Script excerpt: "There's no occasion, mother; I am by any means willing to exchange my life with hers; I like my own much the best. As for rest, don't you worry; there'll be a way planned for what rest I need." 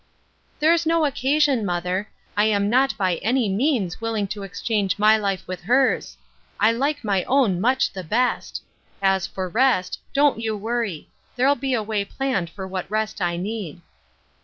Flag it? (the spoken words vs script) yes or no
yes